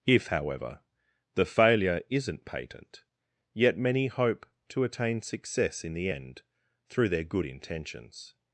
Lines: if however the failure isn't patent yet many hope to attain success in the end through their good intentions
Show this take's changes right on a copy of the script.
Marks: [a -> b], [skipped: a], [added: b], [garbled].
if however the failure isn't patent yet many hope to attain success in the end through their good intentions